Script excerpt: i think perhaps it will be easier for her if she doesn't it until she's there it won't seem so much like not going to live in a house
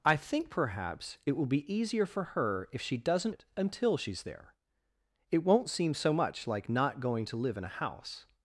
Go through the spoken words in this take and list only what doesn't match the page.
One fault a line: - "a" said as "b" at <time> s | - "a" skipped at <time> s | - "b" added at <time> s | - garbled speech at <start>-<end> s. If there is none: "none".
none